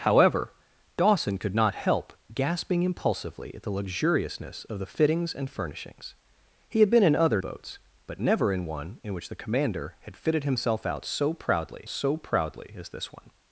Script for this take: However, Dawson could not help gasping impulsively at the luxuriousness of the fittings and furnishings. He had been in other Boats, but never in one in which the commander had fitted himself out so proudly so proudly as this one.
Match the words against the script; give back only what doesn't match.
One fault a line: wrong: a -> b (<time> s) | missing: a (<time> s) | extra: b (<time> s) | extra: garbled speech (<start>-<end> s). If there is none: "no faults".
no faults